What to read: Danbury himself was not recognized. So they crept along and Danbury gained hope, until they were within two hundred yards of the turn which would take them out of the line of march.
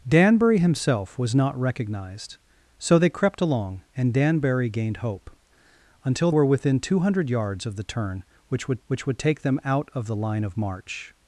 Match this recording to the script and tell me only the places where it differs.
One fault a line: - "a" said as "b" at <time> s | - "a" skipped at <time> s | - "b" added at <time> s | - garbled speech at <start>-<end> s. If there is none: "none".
- "they" skipped at 6.3 s
- "which would" added at 8.9 s